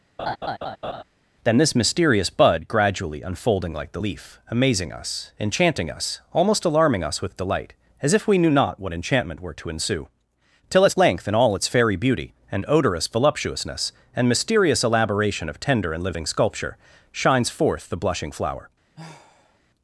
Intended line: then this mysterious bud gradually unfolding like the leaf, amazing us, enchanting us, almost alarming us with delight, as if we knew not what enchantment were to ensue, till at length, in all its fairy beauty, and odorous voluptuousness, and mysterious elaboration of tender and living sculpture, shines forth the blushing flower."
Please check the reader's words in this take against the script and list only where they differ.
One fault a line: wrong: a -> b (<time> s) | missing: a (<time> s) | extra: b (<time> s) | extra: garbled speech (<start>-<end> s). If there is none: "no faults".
no faults